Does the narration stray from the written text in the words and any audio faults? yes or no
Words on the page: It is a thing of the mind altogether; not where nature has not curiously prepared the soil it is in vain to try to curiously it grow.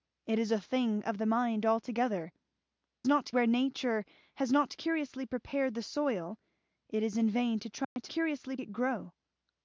yes